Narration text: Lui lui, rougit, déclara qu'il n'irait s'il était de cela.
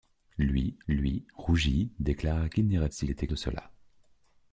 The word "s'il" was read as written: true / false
true